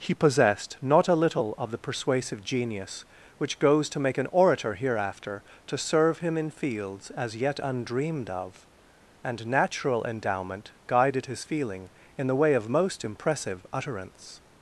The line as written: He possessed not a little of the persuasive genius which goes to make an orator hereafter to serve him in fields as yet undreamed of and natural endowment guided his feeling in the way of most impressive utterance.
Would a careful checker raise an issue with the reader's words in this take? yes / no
no